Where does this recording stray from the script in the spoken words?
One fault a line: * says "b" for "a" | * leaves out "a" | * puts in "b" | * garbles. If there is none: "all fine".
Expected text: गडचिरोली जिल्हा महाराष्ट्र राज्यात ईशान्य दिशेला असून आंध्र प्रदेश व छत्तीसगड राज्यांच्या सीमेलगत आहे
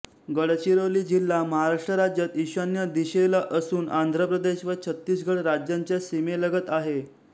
all fine